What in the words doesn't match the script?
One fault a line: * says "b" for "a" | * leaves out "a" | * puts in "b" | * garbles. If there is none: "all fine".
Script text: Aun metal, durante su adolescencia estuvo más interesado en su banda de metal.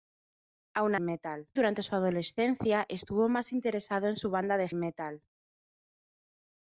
all fine